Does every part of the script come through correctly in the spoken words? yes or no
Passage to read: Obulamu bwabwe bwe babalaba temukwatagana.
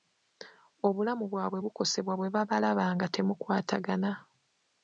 no